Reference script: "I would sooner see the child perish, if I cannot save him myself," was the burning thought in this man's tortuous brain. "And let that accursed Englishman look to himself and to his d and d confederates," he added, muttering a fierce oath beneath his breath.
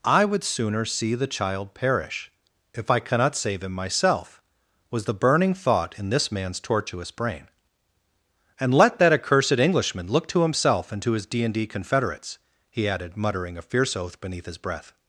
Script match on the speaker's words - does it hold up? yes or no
yes